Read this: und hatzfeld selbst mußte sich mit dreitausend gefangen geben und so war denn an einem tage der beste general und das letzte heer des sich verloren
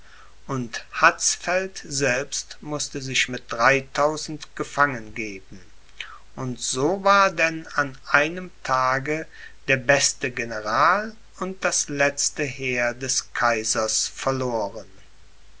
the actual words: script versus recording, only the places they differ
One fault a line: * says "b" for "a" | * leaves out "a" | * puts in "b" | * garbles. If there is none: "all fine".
* says "kaisers" for "sich"